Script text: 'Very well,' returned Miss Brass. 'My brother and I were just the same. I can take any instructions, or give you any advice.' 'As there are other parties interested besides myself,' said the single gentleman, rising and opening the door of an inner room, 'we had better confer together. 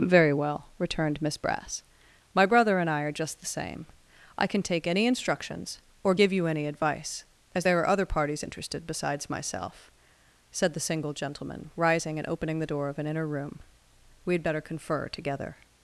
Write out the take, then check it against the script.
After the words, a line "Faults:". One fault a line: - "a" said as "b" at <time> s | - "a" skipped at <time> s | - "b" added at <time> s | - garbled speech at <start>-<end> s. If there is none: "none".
'Very well,' returned Miss Brass. 'My brother and I are just the same. I can take any instructions, or give you any advice.' 'As there are other parties interested besides myself,' said the single gentleman, rising and opening the door of an inner room, 'we had better confer together.
Faults:
- "were" said as "are" at 3.0 s